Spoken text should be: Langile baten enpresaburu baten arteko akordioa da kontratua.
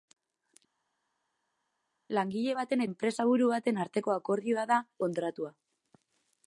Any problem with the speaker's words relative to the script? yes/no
no